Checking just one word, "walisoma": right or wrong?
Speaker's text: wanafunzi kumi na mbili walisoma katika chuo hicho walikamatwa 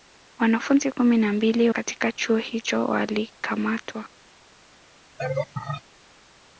wrong